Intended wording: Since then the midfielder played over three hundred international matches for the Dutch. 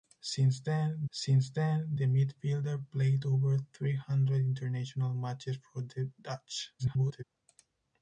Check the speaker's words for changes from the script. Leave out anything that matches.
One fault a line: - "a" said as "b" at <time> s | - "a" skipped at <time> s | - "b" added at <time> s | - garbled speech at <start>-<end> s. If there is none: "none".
- "since then" added at 1.1 s
- garbled speech at 6.8-7.2 s